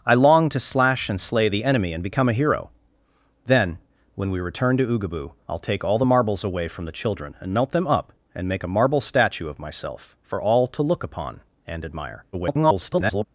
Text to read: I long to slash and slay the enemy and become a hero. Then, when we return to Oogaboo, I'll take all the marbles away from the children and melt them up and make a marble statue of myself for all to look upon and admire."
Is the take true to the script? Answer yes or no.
no